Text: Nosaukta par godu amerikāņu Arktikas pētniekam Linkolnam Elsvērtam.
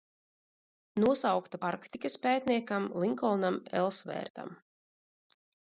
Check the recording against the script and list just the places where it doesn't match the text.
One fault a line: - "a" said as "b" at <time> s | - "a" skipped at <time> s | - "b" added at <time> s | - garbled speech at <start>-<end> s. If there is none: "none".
- "par godu amerikāņu" skipped at 1.6 s